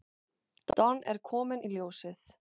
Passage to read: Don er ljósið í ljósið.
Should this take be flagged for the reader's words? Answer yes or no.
yes